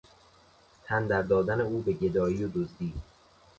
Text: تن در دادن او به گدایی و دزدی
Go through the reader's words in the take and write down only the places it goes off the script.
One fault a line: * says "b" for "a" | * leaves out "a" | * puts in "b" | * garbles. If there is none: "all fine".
all fine